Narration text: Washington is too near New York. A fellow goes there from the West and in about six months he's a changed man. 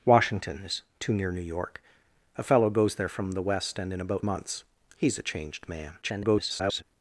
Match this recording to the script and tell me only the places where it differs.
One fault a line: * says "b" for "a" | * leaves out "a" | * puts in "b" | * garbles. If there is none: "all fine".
* leaves out "six"
* garbles